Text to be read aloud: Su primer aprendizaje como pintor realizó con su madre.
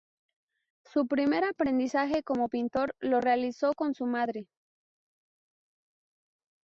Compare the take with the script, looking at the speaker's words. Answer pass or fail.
fail